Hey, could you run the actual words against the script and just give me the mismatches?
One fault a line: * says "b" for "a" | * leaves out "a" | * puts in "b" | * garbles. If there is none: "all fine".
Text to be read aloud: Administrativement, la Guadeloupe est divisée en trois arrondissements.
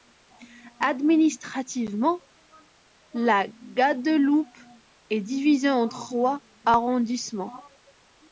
all fine